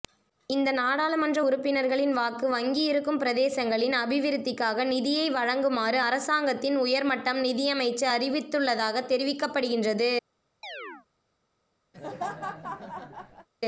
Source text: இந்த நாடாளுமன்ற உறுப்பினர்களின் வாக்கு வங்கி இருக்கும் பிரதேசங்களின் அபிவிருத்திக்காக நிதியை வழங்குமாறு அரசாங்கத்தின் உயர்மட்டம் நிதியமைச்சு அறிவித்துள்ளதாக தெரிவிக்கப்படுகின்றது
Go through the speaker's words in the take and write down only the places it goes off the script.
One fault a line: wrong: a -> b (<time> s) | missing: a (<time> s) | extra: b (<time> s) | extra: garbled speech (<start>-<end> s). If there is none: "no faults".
no faults